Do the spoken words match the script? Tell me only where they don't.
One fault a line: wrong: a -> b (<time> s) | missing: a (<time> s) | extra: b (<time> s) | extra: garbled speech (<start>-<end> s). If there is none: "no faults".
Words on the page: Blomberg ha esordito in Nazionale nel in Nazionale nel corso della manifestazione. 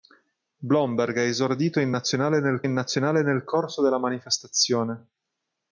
no faults